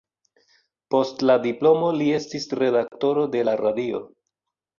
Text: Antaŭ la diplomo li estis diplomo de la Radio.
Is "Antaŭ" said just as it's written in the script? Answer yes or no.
no